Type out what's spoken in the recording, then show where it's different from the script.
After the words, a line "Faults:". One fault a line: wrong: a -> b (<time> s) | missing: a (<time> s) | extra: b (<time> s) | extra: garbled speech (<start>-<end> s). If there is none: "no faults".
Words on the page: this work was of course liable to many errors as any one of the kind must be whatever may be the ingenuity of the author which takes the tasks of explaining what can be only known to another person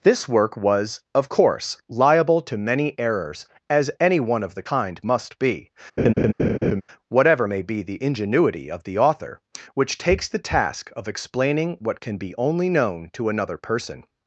this work was of course liable to many errors as any one of the kind must be whatever may be the ingenuity of the author which takes the task of explaining what can be only known to another person
Faults:
wrong: tasks -> task (10.4 s)